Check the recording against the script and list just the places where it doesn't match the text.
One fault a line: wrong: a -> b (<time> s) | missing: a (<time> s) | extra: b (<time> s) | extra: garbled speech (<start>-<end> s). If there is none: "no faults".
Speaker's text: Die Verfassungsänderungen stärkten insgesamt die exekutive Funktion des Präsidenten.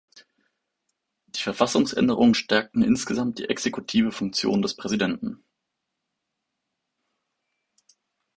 no faults